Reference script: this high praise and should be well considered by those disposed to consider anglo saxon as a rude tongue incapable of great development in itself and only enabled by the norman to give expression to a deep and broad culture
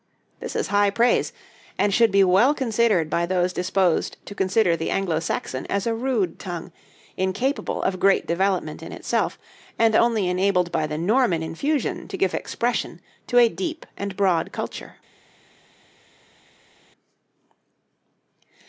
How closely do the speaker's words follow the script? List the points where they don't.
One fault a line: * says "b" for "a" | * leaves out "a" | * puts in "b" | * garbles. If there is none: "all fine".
* puts in "is"
* puts in "the"
* puts in "infusion"